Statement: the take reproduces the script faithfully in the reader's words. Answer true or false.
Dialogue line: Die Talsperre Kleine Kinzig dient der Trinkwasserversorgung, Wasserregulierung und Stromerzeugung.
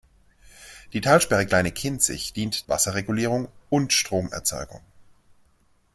false